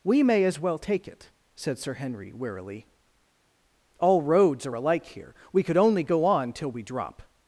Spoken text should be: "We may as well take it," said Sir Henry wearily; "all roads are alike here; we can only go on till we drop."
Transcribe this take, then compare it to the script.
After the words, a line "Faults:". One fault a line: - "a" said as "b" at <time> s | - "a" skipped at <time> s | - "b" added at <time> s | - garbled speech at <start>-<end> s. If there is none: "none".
"We may as well take it," said Sir Henry wearily; "all roads are alike here; we could only go on till we drop."
Faults:
- "can" said as "could" at 5.6 s